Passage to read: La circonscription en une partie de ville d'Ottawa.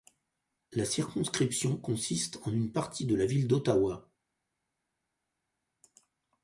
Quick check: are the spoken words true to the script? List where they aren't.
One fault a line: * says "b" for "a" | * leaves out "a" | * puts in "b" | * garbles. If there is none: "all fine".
* puts in "consiste"
* puts in "la"